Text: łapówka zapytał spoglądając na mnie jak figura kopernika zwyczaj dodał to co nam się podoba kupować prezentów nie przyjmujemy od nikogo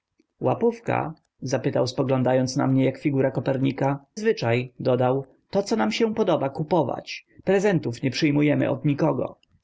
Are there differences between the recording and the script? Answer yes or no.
no